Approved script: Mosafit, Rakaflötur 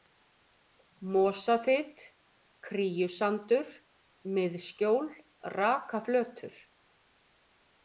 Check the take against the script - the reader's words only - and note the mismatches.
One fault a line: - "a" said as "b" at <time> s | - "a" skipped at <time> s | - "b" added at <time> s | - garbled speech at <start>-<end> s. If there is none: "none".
- "Kríusandur Miðskjól" added at 2.7 s